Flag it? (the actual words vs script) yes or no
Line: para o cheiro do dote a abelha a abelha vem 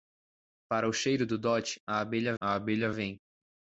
no